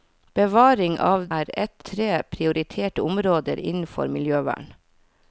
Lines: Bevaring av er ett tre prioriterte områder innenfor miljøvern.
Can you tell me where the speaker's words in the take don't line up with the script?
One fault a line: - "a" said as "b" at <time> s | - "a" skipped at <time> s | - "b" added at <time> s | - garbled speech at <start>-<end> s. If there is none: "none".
none